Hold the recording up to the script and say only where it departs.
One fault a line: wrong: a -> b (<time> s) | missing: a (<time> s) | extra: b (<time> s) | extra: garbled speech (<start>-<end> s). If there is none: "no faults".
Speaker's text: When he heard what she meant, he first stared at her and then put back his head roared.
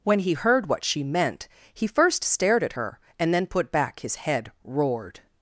no faults